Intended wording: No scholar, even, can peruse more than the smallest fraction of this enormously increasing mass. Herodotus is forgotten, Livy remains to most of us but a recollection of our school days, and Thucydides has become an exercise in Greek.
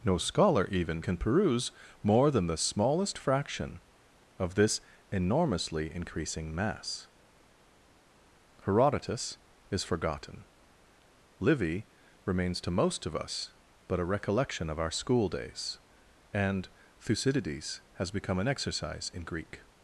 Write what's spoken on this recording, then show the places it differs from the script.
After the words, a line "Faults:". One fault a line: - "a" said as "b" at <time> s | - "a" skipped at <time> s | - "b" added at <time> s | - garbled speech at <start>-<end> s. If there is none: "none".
No scholar, even, can peruse more than the smallest fraction of this enormously increasing mass. Herodotus is forgotten, Livy remains to most of us but a recollection of our school days, and Thucydides has become an exercise in Greek.
Faults:
none